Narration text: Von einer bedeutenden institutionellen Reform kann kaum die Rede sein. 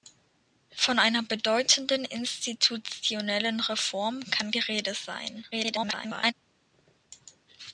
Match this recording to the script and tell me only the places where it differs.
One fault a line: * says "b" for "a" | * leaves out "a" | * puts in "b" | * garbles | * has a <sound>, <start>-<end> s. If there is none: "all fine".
* leaves out "kaum"
* garbles